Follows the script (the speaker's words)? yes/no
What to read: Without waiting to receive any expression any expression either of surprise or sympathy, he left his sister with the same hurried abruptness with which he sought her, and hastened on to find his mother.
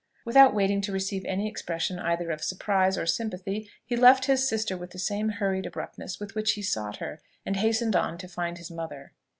no